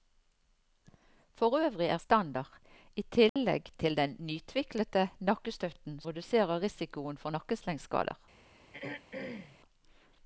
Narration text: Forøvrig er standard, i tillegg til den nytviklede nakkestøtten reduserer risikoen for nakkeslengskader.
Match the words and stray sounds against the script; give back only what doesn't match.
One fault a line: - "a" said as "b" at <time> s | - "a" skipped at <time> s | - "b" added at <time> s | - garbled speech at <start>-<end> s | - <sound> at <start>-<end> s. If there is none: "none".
- dropout at 3.3-3.4 s
- throat clearing at 8.7-9.6 s